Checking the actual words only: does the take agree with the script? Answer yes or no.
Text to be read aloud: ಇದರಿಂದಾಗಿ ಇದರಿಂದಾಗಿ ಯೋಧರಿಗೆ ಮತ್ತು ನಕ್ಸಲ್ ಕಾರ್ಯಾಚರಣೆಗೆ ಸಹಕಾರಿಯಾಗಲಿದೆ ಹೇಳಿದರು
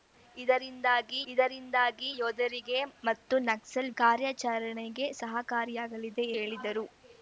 yes